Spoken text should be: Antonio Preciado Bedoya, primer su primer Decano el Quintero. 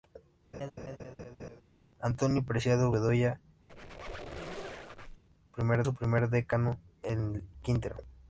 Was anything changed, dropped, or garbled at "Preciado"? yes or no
no